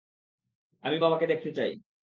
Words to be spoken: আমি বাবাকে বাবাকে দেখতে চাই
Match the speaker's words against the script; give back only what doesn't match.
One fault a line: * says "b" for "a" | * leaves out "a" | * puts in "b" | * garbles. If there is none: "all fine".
* leaves out "বাবাকে"